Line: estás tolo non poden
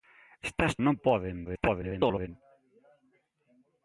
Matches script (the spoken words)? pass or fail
fail